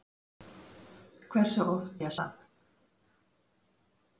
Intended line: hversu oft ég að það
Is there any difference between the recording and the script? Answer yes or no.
no